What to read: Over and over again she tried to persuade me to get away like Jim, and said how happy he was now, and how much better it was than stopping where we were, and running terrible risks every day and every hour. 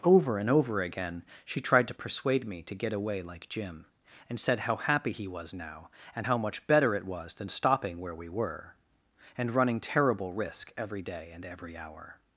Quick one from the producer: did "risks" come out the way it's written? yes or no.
no